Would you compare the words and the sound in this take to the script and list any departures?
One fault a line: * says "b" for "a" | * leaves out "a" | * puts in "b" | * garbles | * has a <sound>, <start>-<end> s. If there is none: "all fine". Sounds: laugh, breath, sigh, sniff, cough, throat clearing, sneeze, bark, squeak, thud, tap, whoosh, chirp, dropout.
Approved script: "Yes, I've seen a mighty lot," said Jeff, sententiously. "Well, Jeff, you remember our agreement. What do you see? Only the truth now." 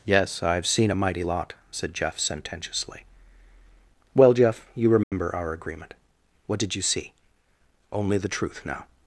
* has a dropout, 5.0-5.1 s
* says "did" for "do"